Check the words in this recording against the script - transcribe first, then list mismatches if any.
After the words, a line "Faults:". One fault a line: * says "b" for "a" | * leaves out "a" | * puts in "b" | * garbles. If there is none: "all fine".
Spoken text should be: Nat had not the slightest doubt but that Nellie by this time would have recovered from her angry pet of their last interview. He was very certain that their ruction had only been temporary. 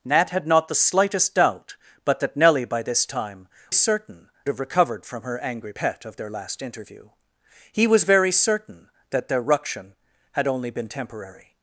Nat had not the slightest doubt but that Nellie by this time certain have recovered from her angry pet of their last interview. He was very certain that their ruction had only been temporary.
Faults:
* says "certain" for "would"